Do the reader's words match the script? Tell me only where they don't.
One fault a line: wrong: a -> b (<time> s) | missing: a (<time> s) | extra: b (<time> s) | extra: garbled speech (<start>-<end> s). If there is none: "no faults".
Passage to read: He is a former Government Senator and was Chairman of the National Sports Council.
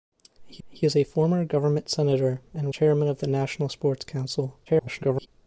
extra: he (0.7 s)
missing: was (2.7 s)
extra: garbled speech (4.7-5.3 s)